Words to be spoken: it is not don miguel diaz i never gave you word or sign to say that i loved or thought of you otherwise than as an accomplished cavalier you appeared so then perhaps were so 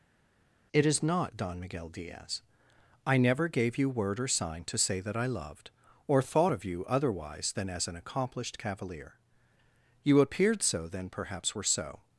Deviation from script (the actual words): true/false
false